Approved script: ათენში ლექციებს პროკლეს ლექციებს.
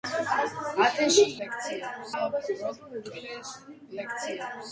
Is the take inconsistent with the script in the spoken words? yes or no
no